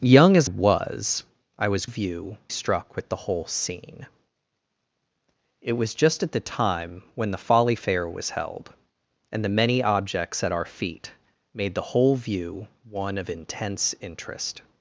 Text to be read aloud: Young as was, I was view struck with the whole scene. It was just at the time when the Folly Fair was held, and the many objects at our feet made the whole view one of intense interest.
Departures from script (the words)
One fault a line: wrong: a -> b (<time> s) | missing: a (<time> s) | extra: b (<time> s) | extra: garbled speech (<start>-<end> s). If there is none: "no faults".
no faults